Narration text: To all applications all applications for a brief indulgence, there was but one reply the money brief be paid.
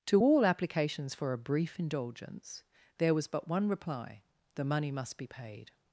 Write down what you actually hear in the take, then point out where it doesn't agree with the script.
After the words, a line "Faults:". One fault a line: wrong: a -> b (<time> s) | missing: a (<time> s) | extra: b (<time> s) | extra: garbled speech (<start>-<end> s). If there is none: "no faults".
To all applications for a brief indulgence, there was but one reply the money must be paid.
Faults:
missing: all applications (1.1 s)
wrong: brief -> must (4.9 s)